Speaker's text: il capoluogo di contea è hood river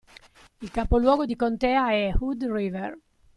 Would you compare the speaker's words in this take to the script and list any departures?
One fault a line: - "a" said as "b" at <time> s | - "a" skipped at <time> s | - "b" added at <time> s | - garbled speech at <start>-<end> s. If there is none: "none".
none